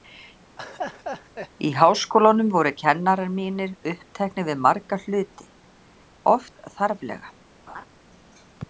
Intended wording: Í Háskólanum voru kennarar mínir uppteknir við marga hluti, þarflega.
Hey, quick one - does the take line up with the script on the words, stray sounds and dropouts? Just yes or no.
no